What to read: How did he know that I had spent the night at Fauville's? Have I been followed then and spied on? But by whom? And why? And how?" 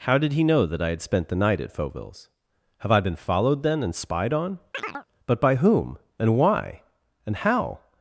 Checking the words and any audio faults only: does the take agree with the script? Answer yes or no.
no